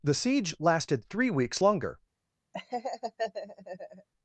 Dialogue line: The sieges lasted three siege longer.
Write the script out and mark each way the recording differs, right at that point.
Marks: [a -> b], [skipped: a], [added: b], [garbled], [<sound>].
The [sieges -> siege] lasted three [siege -> weeks] longer. [laugh]